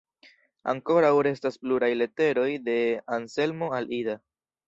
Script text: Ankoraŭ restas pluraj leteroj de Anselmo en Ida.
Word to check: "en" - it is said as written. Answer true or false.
false